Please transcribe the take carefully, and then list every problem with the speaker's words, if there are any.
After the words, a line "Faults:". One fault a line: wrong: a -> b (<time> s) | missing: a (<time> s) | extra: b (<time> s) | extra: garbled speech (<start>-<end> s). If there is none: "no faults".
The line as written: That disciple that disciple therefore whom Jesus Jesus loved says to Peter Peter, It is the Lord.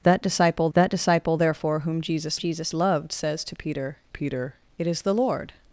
That disciple that disciple therefore whom Jesus Jesus loved says to Peter Peter, It is the Lord.
Faults:
no faults